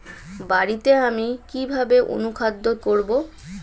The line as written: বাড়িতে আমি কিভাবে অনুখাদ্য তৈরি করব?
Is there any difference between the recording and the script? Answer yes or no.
yes